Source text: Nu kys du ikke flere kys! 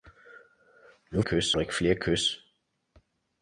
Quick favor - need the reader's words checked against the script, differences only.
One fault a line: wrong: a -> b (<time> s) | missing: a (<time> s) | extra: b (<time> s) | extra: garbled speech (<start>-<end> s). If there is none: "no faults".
no faults